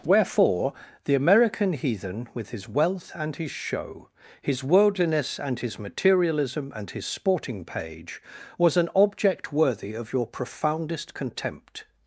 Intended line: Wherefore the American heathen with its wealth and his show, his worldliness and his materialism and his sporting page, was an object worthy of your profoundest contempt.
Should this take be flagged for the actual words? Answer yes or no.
yes